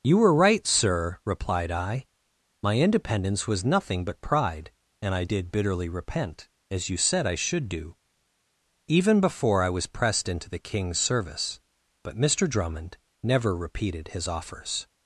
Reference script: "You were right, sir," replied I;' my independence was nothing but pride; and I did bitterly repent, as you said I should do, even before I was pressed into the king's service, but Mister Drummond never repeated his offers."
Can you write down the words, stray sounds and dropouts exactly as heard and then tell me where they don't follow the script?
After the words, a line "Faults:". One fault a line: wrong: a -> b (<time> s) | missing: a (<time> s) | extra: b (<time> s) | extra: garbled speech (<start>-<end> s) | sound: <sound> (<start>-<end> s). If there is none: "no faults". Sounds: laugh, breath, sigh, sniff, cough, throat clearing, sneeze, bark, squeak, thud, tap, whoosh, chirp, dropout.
"You were right, sir," replied I;' my independence was nothing but pride; and I did bitterly repent, as you said I should do, even before I was pressed into the king's service, but Mister Drummond never repeated his offers."
Faults:
no faults